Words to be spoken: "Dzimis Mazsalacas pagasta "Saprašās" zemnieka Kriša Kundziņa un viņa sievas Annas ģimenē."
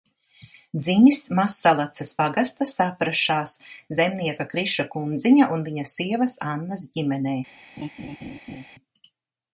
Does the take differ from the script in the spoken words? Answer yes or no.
no